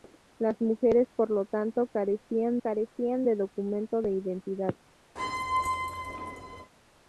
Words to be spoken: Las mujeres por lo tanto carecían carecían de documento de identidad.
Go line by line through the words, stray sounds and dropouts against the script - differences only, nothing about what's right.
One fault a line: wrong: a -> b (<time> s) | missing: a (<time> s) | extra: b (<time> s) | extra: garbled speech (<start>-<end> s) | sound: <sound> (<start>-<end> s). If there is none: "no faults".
sound: squeak (5.2-6.7 s)